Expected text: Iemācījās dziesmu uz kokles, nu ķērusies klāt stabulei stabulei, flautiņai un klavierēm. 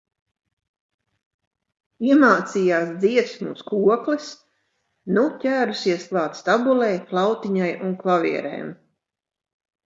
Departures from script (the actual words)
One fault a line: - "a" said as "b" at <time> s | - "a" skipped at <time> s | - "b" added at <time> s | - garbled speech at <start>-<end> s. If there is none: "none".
- "stabulei" skipped at 6.9 s